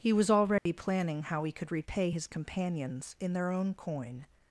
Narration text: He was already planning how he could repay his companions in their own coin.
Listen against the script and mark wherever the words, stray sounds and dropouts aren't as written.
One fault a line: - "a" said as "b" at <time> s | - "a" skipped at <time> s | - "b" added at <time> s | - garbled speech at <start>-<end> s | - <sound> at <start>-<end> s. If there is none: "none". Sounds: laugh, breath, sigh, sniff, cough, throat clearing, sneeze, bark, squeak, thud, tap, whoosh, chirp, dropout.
- dropout at 0.6-0.7 s